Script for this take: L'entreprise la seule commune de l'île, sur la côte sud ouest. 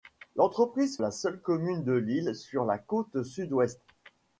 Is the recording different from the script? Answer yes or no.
no